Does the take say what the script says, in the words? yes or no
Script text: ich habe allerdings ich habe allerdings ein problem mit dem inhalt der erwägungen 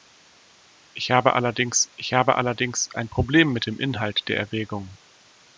yes